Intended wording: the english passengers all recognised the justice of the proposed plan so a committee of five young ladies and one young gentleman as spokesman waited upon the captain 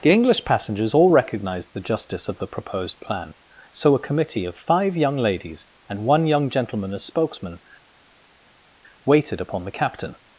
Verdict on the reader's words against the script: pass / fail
pass